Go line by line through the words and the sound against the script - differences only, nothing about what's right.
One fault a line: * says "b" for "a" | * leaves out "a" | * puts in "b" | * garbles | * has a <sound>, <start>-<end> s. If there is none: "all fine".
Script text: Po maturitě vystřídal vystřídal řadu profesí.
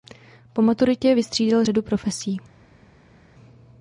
* leaves out "vystřídal"